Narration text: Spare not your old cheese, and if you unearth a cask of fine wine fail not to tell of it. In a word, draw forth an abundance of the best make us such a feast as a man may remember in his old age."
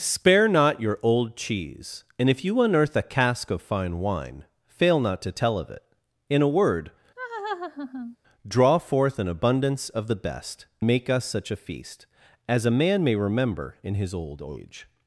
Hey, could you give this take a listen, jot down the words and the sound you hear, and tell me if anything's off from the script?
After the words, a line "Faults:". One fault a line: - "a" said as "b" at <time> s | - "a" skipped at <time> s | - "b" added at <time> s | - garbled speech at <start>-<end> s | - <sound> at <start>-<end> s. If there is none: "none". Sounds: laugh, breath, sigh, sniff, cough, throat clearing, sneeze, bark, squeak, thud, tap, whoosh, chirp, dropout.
Spare not your old cheese, and if you unearth a cask of fine wine fail not to tell of it. In a word, draw forth an abundance of the best make us such a feast as a man may remember in his old age."
Faults:
- laugh at 7.2-8.2 s